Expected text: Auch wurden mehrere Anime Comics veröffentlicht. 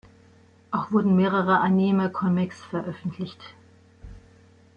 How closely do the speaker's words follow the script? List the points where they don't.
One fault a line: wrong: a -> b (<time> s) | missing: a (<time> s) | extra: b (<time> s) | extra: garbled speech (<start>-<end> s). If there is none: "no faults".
no faults